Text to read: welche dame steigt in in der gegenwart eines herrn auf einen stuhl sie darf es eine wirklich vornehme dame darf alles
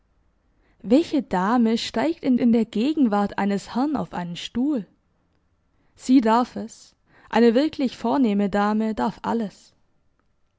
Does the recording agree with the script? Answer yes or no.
yes